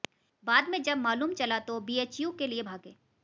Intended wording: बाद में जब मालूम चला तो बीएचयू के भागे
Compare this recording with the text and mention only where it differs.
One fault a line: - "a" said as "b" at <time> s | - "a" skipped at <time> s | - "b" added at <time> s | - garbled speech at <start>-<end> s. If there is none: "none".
- "लिए" added at 2.5 s